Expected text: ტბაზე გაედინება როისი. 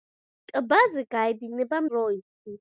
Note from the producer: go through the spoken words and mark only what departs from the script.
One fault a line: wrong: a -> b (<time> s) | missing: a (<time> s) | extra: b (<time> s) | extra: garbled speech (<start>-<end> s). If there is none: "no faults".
no faults